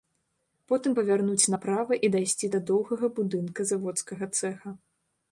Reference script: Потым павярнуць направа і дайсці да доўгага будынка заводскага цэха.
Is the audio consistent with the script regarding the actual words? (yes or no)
yes